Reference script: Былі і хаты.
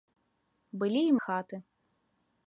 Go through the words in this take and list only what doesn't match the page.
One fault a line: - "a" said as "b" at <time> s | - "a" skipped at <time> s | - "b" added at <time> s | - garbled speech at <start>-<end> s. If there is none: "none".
none